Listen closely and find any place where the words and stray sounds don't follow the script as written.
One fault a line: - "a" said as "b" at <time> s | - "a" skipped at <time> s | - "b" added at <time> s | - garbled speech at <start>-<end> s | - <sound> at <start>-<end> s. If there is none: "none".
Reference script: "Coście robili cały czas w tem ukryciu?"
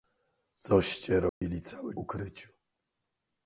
- dropout at 1.3-1.4 s
- "czas w tem" skipped at 1.9 s